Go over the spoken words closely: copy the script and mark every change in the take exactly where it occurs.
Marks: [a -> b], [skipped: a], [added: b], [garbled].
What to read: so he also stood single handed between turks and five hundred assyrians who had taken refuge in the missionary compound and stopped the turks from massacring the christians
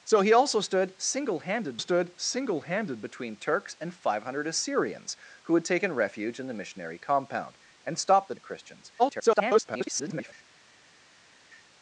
so he also stood single handed [added: stood single handed] between turks and five hundred assyrians who had taken refuge in the missionary compound and stopped the [skipped: turks from massacring] the christians [garbled]